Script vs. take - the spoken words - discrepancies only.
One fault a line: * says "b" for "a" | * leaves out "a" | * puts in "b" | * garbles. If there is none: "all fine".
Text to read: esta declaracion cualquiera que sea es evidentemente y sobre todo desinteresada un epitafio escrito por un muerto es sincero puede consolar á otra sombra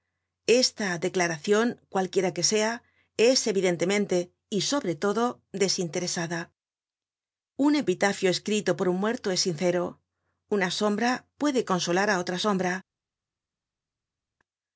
* puts in "una sombra"